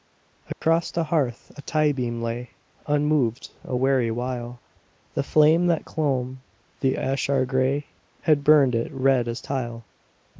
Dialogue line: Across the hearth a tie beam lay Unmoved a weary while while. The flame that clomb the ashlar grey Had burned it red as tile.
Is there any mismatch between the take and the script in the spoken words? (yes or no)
yes